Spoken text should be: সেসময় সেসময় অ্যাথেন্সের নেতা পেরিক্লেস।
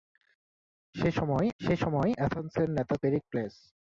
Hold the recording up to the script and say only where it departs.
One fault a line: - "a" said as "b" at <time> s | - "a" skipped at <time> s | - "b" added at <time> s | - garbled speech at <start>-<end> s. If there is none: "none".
none